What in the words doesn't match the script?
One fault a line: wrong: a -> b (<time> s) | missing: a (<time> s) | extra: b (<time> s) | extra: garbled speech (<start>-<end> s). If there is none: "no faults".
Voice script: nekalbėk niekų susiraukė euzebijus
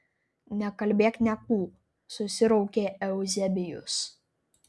no faults